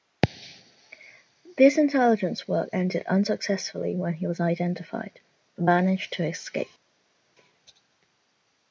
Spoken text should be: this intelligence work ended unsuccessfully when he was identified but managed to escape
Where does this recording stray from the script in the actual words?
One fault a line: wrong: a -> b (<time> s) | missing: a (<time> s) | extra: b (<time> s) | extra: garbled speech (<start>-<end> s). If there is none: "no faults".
no faults